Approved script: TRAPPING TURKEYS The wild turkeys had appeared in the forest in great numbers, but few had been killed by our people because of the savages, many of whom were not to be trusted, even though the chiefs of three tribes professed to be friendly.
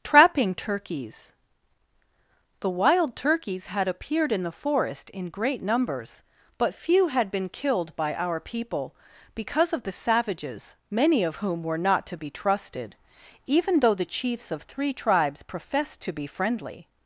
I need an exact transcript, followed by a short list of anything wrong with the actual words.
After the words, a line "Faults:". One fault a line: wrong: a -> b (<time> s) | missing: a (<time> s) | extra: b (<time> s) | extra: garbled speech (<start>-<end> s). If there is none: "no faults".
TRAPPING TURKEYS The wild turkeys had appeared in the forest in great numbers, but few had been killed by our people because of the savages, many of whom were not to be trusted, even though the chiefs of three tribes professed to be friendly.
Faults:
no faults